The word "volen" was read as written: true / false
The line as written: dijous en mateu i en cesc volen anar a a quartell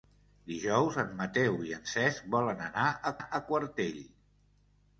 true